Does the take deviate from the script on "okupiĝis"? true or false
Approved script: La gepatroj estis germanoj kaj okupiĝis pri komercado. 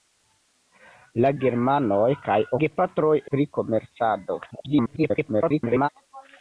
true